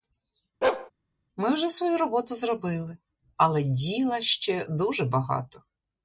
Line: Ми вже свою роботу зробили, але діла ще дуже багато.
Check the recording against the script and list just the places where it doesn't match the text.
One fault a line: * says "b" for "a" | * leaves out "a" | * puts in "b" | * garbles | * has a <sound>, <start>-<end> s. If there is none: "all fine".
* has a bark, 0.6-0.9 s